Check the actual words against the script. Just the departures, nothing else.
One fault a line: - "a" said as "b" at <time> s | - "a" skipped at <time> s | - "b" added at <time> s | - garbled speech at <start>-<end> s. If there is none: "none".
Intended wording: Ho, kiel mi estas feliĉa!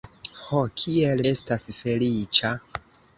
- "mi" skipped at 1.2 s